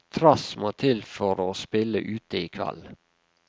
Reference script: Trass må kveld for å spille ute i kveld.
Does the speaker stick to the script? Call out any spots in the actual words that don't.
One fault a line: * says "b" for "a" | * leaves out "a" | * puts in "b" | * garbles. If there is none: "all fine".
* says "til" for "kveld"